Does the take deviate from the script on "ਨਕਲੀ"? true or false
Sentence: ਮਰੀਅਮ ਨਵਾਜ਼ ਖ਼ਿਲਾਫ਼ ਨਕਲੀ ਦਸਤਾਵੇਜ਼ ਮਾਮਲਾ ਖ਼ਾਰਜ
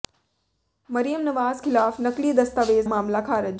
false